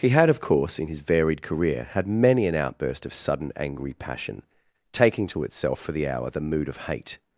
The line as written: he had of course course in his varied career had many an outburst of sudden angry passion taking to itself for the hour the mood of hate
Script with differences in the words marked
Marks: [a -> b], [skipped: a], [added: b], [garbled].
he had of course [skipped: course] in his varied career had many an outburst of sudden angry passion taking to itself for the hour the mood of hate